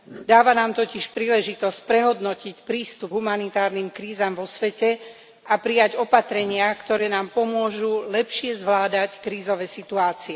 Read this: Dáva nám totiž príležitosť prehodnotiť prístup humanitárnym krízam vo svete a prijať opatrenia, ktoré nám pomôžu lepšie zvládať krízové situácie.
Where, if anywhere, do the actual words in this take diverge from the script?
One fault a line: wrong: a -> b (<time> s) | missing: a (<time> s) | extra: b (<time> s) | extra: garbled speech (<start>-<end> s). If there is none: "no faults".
no faults